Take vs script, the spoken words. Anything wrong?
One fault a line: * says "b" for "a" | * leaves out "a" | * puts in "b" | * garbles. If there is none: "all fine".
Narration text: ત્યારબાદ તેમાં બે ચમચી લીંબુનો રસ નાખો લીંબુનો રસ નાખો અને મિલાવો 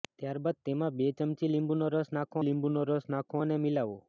all fine